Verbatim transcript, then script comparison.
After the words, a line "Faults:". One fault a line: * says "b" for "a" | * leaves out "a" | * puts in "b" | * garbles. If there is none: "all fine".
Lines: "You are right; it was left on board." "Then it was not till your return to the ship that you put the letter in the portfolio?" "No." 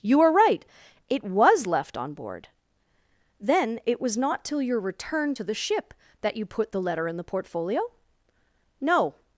"You are right; it was left on board." "Then it was not till your return to the ship that you put the letter in the portfolio?" "No."
Faults:
all fine